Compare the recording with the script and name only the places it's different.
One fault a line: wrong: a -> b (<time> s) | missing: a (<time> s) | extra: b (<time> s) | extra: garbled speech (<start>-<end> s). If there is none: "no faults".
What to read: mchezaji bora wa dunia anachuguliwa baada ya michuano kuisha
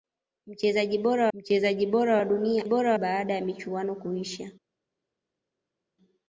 extra: mchezaji bora (1.3 s)
wrong: anachuguliwa -> bora (2.6 s)